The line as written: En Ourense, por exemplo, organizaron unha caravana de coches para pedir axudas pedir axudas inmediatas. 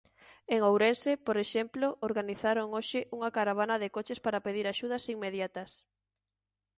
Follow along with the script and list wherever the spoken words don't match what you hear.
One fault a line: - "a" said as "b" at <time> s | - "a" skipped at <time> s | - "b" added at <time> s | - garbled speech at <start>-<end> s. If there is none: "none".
- "hoxe" added at 2.8 s
- "pedir axudas" skipped at 5.0 s